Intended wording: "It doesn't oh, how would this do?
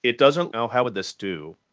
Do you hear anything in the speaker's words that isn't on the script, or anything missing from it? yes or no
no